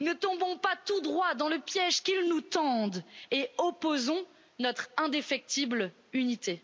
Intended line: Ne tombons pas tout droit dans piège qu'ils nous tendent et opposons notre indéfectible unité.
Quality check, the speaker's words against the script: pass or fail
fail